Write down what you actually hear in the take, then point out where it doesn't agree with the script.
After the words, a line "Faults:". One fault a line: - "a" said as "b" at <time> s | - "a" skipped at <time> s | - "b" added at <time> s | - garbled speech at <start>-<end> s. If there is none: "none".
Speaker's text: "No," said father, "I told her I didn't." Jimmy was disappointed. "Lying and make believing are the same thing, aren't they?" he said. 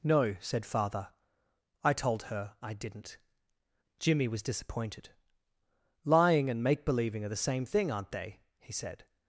"No," said father, "I told her I didn't." Jimmy was disappointed. "Lying and make believing are the same thing, aren't they?" he said.
Faults:
none